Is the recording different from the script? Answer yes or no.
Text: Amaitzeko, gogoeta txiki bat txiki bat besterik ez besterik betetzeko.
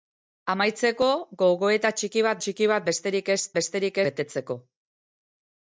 no